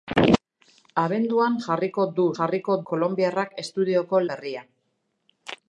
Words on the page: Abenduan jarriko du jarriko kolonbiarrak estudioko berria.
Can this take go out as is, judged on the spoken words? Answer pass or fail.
pass